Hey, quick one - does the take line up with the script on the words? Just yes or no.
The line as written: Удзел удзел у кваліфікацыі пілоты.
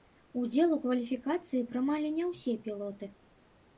no